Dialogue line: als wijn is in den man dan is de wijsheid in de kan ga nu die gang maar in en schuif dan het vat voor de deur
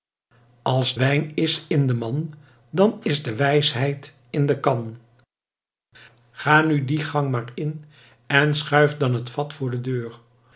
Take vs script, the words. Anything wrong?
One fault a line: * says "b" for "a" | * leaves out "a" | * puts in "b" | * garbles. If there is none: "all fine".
all fine